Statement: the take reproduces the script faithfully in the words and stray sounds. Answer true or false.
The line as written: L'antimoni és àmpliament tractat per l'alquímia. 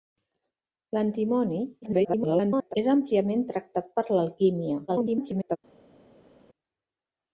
false